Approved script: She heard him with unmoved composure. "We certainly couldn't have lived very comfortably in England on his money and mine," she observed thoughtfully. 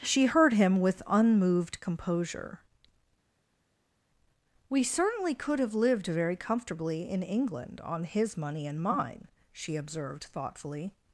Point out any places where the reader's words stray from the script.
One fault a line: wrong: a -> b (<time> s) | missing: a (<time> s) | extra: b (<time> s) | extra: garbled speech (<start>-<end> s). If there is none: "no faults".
wrong: couldn't -> could (5.3 s)